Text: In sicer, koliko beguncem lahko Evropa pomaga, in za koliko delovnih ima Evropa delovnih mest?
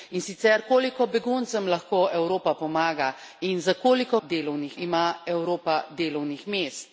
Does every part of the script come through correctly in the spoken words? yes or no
yes